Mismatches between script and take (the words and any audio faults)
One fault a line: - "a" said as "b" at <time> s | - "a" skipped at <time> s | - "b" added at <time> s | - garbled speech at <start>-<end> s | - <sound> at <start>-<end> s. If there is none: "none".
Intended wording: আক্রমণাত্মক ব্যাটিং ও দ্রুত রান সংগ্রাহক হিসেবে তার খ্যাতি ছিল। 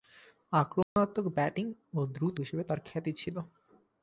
- dropout at 0.8-1.0 s
- "রান সংগ্রাহক" skipped at 2.4 s